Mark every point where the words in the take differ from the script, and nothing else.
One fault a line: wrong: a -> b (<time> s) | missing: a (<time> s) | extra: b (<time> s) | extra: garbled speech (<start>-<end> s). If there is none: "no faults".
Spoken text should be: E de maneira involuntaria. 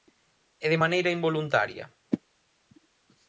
no faults